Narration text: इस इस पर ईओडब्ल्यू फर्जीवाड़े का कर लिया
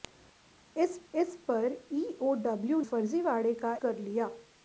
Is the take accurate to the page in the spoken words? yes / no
yes